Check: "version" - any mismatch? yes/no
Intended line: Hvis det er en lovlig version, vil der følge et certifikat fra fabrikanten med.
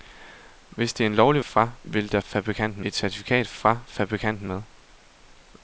yes